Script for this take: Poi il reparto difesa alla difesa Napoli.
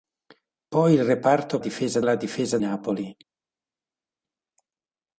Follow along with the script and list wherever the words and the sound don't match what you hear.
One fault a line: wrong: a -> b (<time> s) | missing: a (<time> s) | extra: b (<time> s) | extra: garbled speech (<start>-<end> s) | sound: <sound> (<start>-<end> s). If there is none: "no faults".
no faults